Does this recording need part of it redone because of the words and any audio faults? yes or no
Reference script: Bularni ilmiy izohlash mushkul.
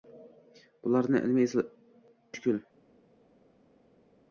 yes